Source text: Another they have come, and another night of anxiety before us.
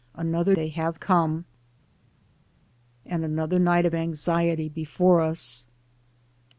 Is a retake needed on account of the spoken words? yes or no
no